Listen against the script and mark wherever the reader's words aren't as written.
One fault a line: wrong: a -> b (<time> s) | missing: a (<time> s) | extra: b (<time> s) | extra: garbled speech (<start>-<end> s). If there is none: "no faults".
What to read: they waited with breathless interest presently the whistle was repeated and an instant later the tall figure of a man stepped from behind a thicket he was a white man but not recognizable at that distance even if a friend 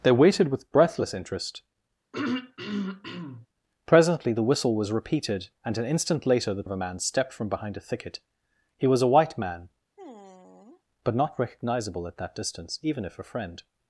missing: tall figure (6.6 s)